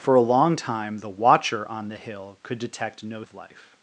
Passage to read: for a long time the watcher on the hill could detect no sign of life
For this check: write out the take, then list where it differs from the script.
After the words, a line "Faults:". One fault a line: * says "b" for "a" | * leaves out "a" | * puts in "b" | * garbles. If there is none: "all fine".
for a long time the watcher on the hill could detect no of life
Faults:
* leaves out "sign"